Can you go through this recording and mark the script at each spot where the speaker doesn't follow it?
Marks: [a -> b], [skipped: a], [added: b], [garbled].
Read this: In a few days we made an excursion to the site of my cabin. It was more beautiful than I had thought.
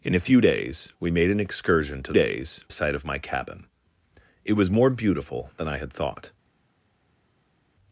In a few days we made an excursion to [the -> days] site of my cabin. It was more beautiful than I had thought.